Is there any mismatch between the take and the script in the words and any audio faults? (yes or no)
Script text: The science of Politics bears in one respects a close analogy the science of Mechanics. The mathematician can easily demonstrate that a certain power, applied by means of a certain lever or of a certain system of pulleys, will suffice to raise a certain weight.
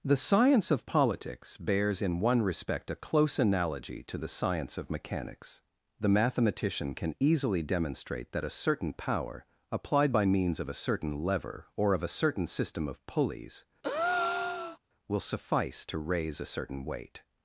yes